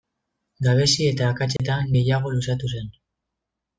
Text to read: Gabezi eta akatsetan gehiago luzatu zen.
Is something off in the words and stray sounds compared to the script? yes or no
yes